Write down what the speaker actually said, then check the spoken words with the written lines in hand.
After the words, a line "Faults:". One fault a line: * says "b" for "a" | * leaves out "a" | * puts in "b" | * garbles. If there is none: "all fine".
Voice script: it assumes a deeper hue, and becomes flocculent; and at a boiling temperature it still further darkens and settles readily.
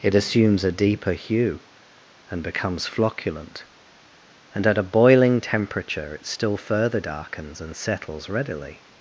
it assumes a deeper hue, and becomes flocculent; and at a boiling temperature it still further darkens and settles readily.
Faults:
all fine